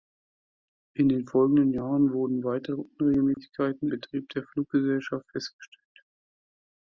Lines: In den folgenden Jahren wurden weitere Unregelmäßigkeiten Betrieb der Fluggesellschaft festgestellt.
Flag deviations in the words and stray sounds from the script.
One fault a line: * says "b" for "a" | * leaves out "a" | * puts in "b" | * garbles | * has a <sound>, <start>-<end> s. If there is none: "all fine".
* has a dropout, 3.3-3.4 s